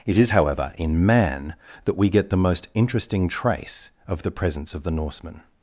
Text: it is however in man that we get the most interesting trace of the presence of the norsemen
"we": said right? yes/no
yes